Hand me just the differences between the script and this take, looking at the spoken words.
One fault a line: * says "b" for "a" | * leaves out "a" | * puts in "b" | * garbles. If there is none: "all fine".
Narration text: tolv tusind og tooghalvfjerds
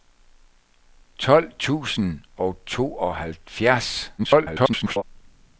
* garbles